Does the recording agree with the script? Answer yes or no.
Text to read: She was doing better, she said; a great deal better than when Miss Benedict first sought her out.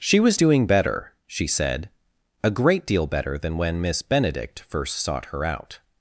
yes